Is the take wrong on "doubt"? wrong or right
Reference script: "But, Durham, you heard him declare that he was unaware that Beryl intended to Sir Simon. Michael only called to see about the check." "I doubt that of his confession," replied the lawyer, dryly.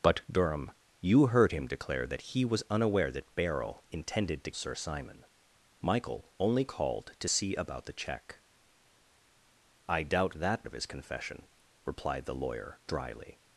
right